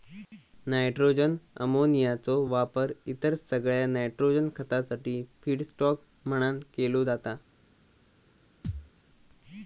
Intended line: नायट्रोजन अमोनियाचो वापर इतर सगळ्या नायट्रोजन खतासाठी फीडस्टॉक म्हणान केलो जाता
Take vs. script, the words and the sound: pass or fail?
fail